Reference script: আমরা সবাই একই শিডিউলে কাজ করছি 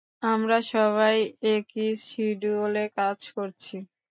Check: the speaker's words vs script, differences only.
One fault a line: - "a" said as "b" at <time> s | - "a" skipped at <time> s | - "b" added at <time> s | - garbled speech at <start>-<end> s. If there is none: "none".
none